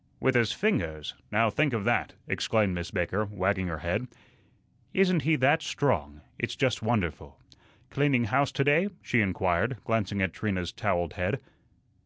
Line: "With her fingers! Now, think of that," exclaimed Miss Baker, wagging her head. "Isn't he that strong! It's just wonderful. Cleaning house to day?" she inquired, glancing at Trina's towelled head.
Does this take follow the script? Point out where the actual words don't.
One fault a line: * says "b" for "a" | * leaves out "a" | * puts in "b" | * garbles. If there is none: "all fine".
* says "his" for "her"